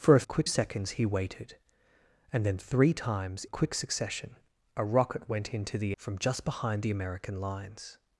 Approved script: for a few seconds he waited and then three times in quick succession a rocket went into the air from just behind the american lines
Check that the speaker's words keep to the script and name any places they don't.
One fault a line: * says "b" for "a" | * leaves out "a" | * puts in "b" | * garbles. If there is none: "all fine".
* says "quick" for "few"
* leaves out "in"
* leaves out "air"